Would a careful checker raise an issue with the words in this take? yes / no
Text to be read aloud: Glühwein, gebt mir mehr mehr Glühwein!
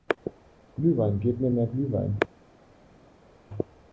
yes